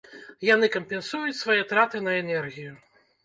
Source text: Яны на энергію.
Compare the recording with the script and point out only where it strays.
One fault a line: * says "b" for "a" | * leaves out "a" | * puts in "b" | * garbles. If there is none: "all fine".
* puts in "кампенсуюць свае траты"